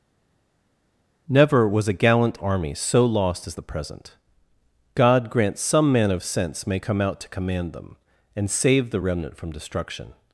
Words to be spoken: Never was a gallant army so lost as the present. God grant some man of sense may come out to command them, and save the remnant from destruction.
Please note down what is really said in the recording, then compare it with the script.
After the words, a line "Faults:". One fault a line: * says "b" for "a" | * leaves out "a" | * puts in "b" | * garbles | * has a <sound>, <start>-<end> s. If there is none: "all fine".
Never was a gallant army so lost as the present. God grant some man of sense may come out to command them, and save the remnant from destruction.
Faults:
all fine